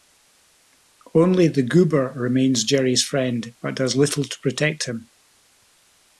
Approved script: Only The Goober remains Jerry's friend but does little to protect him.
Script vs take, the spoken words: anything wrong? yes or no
no